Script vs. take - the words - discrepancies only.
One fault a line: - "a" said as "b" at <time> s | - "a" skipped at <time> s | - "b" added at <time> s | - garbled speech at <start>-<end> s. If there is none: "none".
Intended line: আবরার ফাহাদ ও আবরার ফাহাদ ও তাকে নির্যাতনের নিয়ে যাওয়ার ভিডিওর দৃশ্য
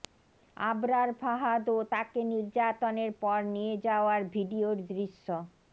- "আবরার ফাহাদ ও" skipped at 1.9 s
- "পর" added at 3.2 s